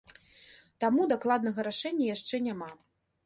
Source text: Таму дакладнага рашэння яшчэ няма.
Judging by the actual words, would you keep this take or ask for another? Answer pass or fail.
pass